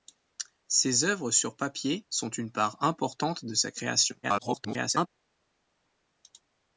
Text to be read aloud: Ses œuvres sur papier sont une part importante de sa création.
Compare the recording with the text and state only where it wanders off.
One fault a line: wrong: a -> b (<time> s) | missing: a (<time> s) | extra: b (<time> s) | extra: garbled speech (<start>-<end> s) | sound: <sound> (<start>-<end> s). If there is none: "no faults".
extra: garbled speech (4.2-5.1 s)